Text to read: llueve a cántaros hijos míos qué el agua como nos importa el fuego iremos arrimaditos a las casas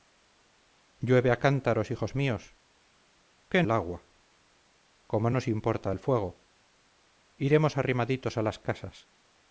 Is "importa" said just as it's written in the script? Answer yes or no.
yes